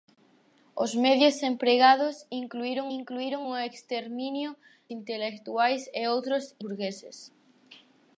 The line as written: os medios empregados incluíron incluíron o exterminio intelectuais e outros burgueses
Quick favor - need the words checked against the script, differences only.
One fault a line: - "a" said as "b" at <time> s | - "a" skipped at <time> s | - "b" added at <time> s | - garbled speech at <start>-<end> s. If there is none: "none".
none